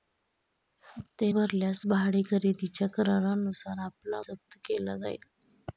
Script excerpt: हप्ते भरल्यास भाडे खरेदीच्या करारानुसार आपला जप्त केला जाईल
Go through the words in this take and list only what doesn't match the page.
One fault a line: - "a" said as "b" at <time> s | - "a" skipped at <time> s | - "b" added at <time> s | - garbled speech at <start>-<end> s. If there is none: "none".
none